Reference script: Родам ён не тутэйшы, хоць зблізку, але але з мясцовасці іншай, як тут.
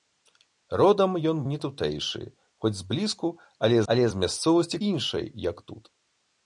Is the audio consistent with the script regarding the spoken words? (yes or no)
yes